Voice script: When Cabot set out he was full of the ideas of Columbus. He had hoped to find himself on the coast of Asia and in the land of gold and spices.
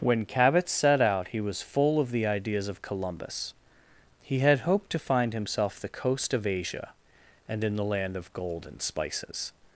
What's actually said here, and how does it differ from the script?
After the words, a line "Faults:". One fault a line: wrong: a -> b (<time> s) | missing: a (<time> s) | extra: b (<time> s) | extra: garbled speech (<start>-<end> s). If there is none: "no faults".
When Cabot set out he was full of the ideas of Columbus. He had hoped to find himself the coast of Asia and in the land of gold and spices.
Faults:
missing: on (5.8 s)